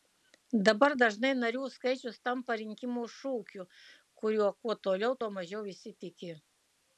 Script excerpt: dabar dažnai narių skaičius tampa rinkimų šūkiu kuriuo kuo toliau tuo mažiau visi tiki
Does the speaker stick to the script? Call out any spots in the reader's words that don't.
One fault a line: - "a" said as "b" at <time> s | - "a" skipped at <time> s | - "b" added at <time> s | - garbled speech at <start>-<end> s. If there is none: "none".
none